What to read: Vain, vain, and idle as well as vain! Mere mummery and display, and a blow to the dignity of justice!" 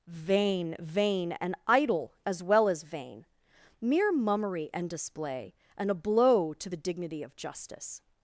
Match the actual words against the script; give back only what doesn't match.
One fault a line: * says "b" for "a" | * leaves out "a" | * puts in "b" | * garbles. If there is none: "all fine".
all fine